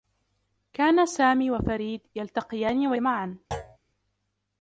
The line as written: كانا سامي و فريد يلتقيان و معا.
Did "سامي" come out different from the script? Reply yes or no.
no